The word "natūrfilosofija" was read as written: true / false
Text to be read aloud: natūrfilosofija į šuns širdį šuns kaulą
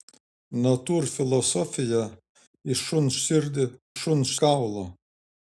true